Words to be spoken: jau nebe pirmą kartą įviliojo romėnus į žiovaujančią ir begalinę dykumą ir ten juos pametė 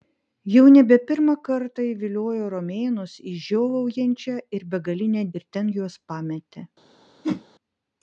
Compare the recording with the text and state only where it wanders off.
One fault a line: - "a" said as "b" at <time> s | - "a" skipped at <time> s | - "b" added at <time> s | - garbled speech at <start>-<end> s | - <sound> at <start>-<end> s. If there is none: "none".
- "dykumą" skipped at 5.3 s
- whoosh at 7.2-7.4 s